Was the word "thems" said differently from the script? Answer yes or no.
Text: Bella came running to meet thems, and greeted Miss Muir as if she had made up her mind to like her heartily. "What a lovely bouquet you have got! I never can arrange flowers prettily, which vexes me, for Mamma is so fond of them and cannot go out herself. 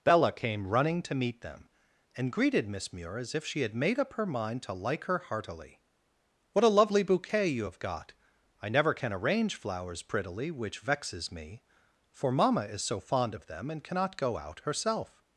yes